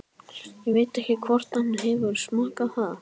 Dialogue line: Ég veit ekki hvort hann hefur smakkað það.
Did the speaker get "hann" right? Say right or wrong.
right